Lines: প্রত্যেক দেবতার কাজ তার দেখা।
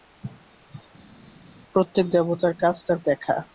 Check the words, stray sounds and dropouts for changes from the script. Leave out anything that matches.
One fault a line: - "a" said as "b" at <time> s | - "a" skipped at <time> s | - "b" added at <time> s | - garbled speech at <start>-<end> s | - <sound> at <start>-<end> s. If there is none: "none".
none